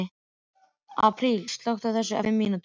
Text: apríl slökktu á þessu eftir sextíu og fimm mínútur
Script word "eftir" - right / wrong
wrong